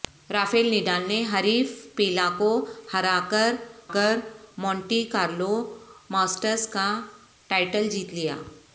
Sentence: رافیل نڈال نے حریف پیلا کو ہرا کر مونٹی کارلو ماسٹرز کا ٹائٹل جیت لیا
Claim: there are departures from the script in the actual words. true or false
true